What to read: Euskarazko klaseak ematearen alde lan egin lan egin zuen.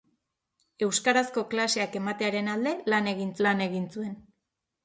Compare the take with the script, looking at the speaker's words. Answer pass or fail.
pass